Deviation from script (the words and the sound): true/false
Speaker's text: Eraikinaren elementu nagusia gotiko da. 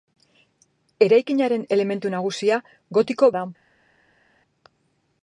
false